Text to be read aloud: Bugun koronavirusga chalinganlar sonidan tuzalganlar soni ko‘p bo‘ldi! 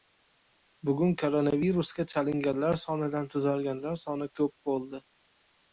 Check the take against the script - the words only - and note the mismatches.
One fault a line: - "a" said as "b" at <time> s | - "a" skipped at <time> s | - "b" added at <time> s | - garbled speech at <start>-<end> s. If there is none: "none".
none